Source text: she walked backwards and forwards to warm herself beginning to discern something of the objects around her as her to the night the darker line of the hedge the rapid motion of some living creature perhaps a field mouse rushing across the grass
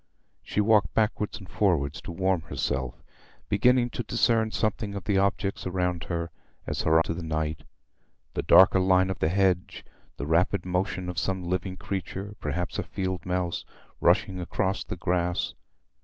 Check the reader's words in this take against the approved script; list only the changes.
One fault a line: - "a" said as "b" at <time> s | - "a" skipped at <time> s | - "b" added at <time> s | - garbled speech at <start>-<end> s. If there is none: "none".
none